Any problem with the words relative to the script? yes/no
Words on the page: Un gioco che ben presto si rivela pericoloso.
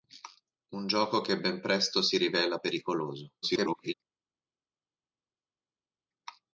yes